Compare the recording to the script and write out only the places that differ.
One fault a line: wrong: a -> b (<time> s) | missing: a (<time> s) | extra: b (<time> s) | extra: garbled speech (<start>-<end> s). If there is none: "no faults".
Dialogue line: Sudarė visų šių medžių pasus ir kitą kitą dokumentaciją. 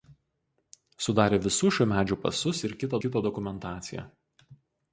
no faults